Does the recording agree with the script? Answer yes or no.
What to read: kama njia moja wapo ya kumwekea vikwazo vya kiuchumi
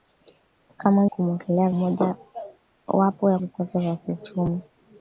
no